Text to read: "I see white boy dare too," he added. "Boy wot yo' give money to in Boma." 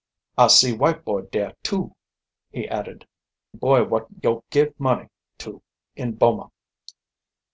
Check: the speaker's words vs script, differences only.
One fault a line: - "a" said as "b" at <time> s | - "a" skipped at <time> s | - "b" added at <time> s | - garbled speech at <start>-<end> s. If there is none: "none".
none